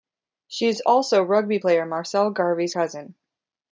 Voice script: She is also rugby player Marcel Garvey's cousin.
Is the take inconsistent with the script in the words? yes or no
no